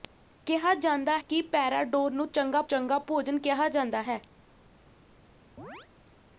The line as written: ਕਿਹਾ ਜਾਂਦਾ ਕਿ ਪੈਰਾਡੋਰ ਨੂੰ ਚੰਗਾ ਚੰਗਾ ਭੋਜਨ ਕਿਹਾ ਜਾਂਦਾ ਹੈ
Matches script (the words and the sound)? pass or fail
fail